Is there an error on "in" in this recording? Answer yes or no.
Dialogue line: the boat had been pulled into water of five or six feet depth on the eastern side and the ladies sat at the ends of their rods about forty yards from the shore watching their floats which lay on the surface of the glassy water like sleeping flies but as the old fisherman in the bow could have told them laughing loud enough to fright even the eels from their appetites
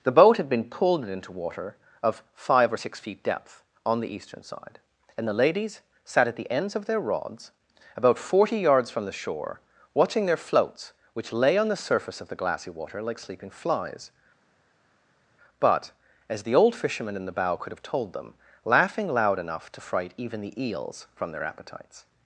no